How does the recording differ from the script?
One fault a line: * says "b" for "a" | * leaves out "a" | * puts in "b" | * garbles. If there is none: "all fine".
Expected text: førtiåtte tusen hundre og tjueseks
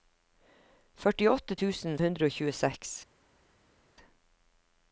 all fine